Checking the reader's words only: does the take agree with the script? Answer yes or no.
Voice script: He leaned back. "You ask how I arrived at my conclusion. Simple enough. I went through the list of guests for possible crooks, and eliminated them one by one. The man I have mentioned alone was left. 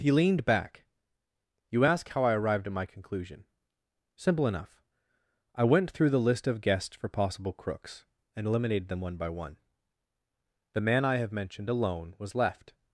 yes